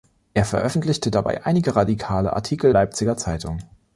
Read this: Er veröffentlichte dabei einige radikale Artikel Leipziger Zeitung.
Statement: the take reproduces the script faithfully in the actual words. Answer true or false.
true